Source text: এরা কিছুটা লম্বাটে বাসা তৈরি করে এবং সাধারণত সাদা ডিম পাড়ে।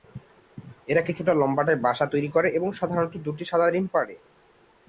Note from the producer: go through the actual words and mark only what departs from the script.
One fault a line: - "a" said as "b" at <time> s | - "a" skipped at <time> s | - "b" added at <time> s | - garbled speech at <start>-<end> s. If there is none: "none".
- "দুটি" added at 3.2 s